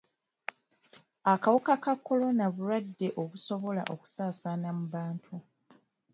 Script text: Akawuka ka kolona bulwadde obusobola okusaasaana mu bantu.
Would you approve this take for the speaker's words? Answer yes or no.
yes